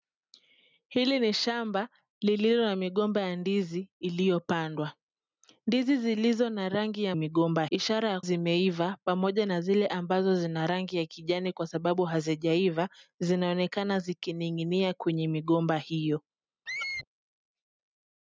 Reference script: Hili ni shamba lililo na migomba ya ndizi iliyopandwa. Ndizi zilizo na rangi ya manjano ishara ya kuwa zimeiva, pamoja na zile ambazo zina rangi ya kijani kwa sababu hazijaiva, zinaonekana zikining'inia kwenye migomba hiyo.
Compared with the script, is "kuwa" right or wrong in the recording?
wrong